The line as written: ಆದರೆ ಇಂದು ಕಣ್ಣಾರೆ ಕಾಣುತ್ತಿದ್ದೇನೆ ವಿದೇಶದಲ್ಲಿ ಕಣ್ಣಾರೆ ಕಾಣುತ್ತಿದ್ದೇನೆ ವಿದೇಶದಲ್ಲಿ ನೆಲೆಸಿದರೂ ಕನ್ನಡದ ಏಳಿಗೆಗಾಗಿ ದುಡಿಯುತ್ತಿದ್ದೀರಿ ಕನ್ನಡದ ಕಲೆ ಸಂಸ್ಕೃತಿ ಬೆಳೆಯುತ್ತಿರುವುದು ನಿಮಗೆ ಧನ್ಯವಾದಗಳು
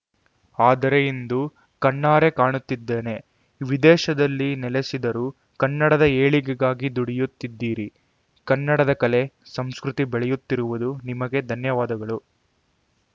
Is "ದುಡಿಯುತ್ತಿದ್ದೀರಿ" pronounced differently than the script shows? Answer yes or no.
no